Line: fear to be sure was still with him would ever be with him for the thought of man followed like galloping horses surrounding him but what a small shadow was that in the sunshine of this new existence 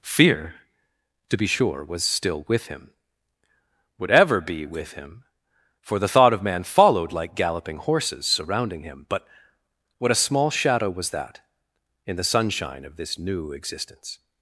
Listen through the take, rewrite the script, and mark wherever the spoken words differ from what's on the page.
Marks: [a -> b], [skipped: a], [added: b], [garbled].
fear to be sure was still with him would ever be with him for the thought of man followed like galloping horses surrounding him but what a small shadow was that in the sunshine of this new existence